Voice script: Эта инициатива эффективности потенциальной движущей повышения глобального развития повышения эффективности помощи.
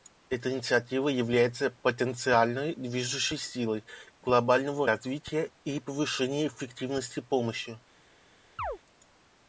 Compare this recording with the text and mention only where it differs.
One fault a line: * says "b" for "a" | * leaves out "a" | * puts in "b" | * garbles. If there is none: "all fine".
* says "является" for "эффективности"
* says "силой" for "повышения"
* puts in "и"